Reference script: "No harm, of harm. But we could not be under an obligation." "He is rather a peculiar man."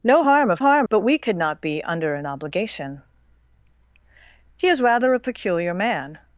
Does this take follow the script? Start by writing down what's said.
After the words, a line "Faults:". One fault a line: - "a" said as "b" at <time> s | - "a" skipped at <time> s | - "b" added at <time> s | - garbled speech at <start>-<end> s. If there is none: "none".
"No harm, of harm. But we could not be under an obligation." "He is rather a peculiar man."
Faults:
none